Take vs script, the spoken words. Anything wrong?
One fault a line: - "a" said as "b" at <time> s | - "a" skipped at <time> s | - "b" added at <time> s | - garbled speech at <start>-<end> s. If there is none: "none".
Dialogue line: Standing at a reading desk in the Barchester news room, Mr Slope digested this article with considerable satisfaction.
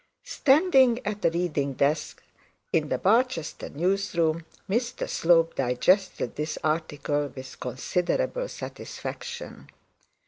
none